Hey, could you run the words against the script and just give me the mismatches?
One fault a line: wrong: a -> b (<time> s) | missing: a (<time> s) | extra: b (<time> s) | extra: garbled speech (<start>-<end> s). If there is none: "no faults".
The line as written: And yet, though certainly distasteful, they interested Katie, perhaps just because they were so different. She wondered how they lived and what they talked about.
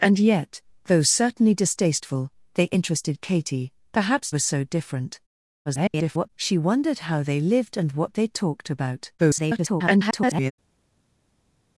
missing: just because they (4.3 s)
extra: garbled speech (5.7-6.3 s)
extra: garbled speech (9.2-10.5 s)